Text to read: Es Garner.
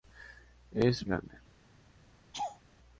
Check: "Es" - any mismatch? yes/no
no